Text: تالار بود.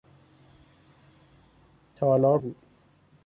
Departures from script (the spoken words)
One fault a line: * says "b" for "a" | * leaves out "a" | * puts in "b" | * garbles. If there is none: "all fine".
all fine